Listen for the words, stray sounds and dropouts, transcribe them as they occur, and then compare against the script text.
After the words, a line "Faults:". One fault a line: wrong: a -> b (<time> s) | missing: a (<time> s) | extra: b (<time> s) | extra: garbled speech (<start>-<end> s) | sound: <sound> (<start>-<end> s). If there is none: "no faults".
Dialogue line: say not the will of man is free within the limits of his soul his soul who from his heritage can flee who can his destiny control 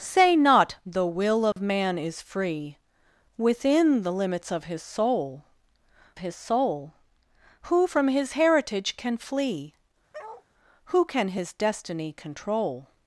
say not the will of man is free within the limits of his soul his soul who from his heritage can flee who can his destiny control
Faults:
sound: dropout (1.5-1.6 s)
sound: bark (10.1-10.5 s)